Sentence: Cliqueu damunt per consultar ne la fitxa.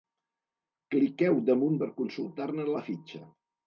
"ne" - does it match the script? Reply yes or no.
yes